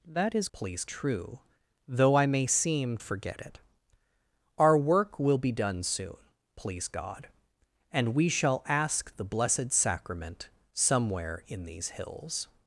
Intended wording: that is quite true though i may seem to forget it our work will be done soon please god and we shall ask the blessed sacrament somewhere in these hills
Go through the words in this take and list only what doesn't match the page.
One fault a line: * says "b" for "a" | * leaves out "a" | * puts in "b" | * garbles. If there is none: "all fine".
* says "please" for "quite"
* leaves out "to"